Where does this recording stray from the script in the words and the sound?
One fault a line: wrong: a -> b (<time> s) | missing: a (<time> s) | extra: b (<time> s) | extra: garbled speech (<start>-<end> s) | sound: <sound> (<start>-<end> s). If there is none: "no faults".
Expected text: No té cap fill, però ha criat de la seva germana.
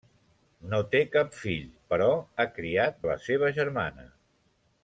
no faults